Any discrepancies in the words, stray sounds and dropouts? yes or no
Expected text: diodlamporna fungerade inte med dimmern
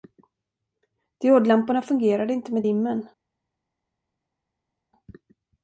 no